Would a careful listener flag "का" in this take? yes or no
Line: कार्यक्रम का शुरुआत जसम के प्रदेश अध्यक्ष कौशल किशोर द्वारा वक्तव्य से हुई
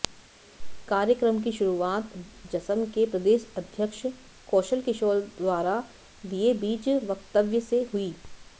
yes